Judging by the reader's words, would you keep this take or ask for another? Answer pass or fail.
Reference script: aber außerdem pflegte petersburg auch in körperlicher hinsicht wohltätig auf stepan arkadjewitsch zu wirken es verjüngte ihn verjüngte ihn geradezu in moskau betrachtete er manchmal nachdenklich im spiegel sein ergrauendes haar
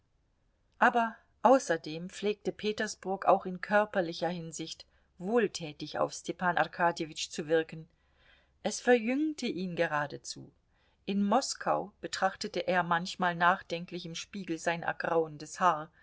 fail